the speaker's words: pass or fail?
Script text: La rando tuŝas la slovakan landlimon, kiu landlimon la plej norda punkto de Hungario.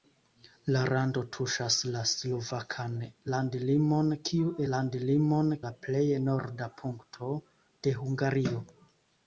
pass